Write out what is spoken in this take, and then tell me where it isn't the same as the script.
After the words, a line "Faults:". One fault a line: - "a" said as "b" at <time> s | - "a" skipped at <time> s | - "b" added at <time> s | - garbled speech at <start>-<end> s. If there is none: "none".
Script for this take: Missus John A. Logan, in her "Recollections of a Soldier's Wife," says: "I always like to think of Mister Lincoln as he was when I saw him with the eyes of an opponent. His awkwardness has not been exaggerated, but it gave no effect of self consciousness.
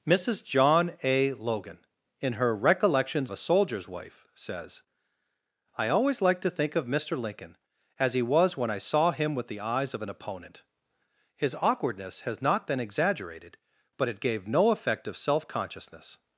Missus John A. Logan, in her "Recollections a Soldier's Wife," says: "I always like to think of Mister Lincoln as he was when I saw him with the eyes of an opponent. His awkwardness has not been exaggerated, but it gave no effect of self consciousness.
Faults:
- "of" skipped at 3.3 s